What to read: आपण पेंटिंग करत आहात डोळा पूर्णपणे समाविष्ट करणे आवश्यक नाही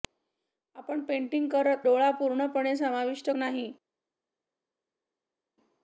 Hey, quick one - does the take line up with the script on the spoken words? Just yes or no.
no